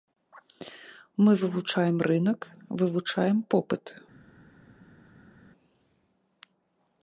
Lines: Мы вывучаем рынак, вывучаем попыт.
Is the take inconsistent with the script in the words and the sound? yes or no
no